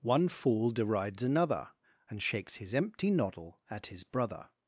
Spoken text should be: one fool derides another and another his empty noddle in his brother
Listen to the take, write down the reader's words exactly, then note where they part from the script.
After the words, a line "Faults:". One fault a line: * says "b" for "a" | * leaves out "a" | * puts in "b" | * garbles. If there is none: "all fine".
one fool derides another and shakes his empty noddle at his brother
Faults:
* says "shakes" for "another"
* says "at" for "in"